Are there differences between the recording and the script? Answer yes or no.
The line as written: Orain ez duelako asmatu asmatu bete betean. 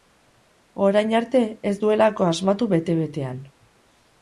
yes